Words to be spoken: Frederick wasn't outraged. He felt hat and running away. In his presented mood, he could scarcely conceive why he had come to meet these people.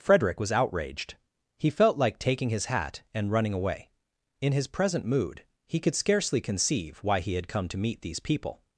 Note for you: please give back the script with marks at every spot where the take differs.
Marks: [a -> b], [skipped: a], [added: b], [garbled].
Frederick [wasn't -> was] outraged. He felt [added: like taking his] hat and running away. In his [presented -> present] mood, he could scarcely conceive why he had come to meet these people.